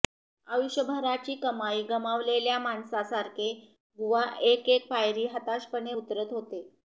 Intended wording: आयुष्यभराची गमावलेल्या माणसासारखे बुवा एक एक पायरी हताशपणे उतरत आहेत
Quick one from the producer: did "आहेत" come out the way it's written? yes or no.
no